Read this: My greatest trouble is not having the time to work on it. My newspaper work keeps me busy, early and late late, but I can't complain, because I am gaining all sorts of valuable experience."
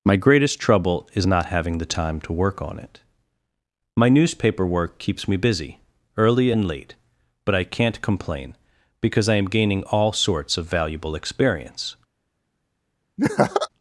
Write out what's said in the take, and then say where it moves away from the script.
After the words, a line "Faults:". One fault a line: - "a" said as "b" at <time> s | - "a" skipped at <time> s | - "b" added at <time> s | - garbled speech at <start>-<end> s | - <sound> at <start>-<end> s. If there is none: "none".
My greatest trouble is not having the time to work on it. My newspaper work keeps me busy, early and late, but I can't complain, because I am gaining all sorts of valuable experience."
Faults:
- "late" skipped at 6.9 s
- laugh at 13.2-13.7 s